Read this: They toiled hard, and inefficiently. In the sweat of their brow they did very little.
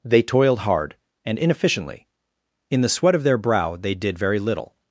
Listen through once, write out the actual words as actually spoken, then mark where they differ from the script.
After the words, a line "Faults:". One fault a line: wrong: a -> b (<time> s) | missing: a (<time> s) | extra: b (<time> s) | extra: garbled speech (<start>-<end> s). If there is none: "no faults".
They toiled hard, and inefficiently. In the sweat of their brow they did very little.
Faults:
no faults